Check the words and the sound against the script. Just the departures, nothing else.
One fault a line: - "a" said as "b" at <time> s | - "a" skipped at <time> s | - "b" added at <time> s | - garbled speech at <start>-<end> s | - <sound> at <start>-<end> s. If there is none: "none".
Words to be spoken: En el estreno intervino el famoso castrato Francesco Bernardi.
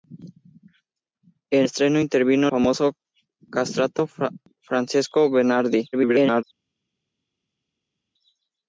- "el" skipped at 1.7 s
- "el" skipped at 2.5 s
- garbled speech at 5.9-6.4 s